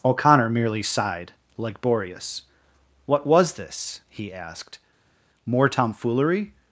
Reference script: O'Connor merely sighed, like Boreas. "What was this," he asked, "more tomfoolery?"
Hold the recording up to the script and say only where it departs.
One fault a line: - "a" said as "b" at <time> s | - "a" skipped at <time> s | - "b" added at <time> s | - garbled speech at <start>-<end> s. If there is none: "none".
none